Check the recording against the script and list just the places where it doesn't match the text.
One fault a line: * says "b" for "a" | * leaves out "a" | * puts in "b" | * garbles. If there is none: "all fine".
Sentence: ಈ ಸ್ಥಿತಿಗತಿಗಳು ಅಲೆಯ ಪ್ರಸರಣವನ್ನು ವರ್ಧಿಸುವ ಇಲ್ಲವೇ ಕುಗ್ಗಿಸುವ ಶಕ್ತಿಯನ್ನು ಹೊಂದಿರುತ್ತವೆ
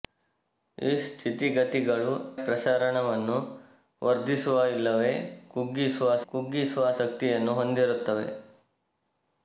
* leaves out "ಅಲೆಯ"
* puts in "ಕುಗ್ಗಿಸುವ"